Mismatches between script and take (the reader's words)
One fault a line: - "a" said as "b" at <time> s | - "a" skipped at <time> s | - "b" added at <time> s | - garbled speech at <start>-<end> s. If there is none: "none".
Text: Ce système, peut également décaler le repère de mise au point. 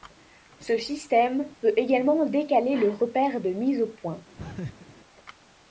none